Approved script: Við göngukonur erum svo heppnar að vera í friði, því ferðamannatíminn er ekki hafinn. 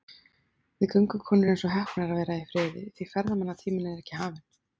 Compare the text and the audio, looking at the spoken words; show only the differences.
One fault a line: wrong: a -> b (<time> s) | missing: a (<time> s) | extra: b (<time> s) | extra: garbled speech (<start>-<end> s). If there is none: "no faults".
no faults